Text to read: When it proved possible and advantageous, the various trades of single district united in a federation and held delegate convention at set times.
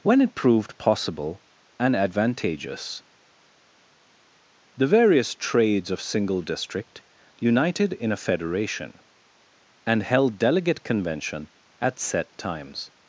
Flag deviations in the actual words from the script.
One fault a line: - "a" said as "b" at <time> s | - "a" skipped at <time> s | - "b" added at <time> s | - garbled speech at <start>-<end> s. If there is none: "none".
none